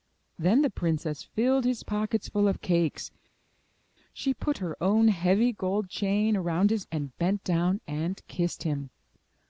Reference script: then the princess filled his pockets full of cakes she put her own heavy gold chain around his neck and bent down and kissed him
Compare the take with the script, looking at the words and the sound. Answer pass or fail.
fail